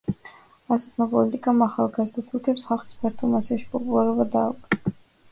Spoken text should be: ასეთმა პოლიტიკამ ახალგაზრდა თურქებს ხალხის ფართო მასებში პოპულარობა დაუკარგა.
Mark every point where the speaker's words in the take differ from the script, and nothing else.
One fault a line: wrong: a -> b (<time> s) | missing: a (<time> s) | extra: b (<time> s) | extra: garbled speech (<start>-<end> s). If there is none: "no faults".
no faults